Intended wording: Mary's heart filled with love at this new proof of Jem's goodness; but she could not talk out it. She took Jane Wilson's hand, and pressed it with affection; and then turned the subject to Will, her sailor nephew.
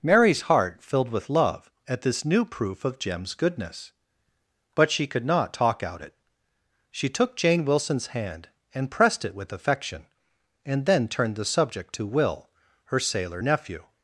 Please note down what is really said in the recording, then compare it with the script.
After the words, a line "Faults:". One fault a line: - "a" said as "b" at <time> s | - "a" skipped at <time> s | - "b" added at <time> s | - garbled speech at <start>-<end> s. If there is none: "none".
Mary's heart filled with love at this new proof of Jem's goodness; but she could not talk out it. She took Jane Wilson's hand, and pressed it with affection; and then turned the subject to Will, her sailor nephew.
Faults:
none